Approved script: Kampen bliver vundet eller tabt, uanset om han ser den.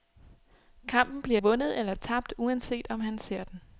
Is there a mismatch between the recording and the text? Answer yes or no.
no